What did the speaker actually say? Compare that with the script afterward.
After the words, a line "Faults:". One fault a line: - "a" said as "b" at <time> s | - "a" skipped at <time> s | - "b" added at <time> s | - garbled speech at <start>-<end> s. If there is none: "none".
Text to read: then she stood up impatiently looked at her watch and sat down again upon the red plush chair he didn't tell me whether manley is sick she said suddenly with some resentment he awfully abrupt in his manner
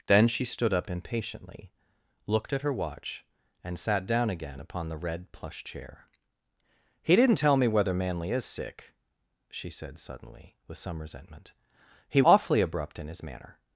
then she stood up impatiently looked at her watch and sat down again upon the red plush chair he didn't tell me whether manley is sick she said suddenly with some resentment he awfully abrupt in his manner
Faults:
none